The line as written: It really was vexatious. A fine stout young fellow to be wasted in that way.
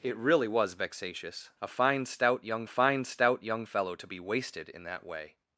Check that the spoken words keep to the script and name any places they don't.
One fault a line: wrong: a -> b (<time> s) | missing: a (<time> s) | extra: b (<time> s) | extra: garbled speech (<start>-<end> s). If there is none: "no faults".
extra: fine stout young (2.7 s)